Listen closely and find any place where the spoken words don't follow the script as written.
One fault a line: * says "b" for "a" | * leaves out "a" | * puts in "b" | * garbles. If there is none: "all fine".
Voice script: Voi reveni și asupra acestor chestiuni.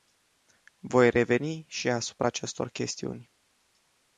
all fine